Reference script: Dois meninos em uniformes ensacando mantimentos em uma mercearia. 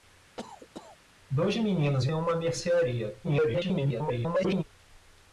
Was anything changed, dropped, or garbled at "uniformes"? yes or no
yes